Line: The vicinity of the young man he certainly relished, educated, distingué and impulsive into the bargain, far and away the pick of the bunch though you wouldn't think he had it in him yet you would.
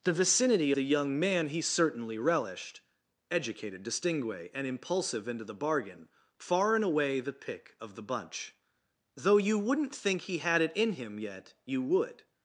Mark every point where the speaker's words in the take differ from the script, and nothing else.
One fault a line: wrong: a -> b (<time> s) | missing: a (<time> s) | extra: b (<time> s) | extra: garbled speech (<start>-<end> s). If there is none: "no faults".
missing: of (0.7 s)